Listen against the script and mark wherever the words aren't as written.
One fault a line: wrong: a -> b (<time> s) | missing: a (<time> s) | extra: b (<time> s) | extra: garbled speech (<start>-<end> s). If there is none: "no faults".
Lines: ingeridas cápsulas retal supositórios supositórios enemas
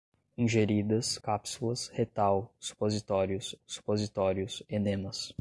no faults